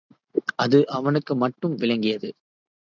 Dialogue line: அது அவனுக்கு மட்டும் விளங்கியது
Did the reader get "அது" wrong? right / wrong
right